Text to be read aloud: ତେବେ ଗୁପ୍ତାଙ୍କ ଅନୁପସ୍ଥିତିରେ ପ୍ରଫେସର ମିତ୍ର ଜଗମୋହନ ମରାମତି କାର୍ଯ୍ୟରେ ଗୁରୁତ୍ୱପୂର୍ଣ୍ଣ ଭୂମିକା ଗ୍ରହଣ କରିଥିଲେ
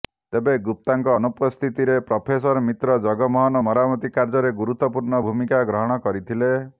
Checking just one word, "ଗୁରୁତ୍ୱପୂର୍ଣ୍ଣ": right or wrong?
right